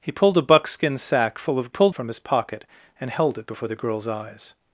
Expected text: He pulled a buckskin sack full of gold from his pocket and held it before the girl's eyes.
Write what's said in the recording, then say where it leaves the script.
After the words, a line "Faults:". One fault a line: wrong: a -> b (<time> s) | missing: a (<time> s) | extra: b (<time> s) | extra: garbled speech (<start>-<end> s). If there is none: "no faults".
He pulled a buckskin sack full of pulled from his pocket and held it before the girl's eyes.
Faults:
wrong: gold -> pulled (1.7 s)